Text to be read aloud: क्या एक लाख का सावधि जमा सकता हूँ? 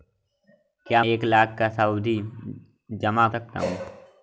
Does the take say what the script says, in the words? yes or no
yes